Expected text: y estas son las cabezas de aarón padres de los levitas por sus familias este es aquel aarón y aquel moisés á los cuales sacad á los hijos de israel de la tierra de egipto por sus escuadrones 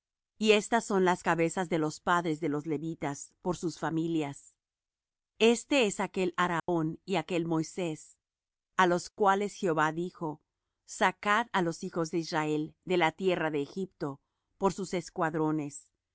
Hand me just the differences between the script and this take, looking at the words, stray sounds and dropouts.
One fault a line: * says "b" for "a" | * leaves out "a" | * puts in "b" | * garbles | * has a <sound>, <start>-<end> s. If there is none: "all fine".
* says "los" for "aarón"
* has a dropout, 6.6-6.7 s
* puts in "jehová dijo"